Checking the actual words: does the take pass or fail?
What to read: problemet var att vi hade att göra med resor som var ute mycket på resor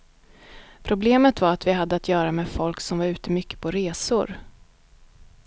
fail